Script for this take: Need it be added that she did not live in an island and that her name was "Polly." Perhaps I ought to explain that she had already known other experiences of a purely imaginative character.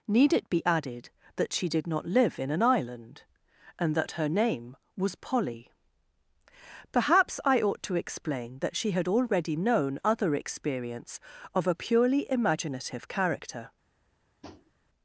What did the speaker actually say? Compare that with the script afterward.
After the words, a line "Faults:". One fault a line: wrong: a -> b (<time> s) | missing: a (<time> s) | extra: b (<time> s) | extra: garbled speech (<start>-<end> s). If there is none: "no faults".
Need it be added that she did not live in an island and that her name was "Polly." Perhaps I ought to explain that she had already known other experience of a purely imaginative character.
Faults:
wrong: experiences -> experience (10.3 s)